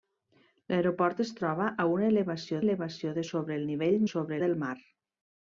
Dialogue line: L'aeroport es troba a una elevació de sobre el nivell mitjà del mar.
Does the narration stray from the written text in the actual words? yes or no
yes